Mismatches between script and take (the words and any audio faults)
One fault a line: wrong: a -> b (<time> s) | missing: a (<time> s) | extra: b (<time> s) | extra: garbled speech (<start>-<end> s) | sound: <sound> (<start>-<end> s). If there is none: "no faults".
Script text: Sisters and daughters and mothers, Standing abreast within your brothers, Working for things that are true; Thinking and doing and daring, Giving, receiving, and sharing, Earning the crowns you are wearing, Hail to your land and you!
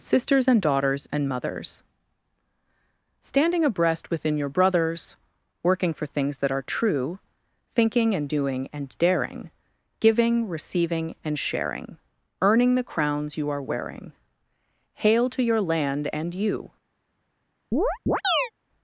sound: chirp (17.7-18.5 s)